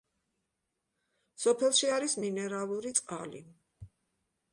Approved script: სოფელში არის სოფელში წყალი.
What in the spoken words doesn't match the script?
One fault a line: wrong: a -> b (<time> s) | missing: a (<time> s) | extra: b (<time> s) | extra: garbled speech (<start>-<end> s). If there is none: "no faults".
wrong: სოფელში -> მინერალური (2.3 s)